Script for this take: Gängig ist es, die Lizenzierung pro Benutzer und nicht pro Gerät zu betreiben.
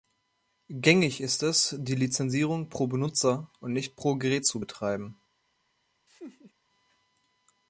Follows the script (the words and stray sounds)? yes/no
no